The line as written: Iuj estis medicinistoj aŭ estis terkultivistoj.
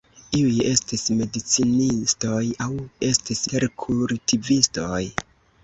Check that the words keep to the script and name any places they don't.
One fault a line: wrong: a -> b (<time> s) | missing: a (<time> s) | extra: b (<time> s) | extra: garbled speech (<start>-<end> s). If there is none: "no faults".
no faults